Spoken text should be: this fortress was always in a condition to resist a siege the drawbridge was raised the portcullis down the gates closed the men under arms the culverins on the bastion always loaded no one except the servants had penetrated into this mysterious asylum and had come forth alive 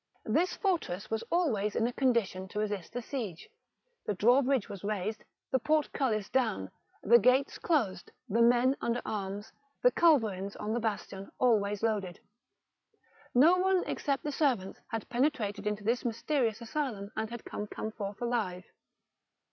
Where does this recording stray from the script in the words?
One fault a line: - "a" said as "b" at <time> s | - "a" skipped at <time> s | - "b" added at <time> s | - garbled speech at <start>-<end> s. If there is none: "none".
- "come" added at 17.7 s